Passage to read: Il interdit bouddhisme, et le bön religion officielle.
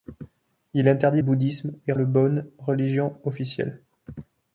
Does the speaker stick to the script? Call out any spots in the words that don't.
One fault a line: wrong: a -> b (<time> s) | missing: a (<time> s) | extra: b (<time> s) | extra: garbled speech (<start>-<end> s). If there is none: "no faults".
no faults